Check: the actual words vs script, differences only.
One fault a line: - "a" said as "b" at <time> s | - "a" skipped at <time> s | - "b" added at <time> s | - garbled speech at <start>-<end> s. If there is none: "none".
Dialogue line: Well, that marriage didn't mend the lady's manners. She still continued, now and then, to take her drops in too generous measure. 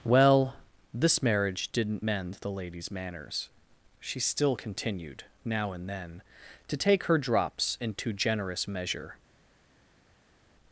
- "that" said as "this" at 0.9 s